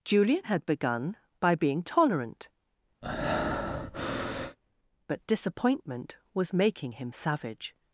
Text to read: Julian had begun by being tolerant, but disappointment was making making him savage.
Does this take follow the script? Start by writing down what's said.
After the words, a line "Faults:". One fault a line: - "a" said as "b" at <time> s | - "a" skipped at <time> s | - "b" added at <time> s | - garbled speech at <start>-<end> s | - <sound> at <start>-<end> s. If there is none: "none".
Julian had begun by being tolerant, but disappointment was making him savage.
Faults:
- breath at 3.0-4.6 s
- "making" skipped at 6.9 s